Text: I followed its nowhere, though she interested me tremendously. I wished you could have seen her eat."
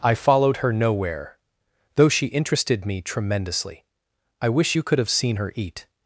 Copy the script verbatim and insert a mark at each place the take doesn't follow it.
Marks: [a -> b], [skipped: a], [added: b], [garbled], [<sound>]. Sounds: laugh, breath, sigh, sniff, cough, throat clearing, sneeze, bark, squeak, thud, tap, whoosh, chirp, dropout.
I followed [its -> her] nowhere, though she interested me tremendously. I [wished -> wish] you could have seen her eat."